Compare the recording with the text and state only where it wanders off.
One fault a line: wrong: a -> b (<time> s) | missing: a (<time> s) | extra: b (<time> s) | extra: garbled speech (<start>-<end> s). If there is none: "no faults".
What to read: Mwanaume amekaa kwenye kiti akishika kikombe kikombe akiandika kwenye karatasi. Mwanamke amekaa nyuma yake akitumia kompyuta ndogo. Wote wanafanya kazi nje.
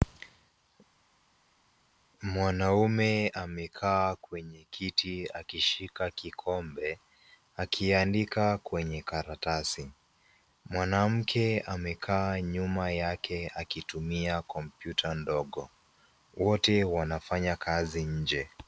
missing: kikombe (7.0 s)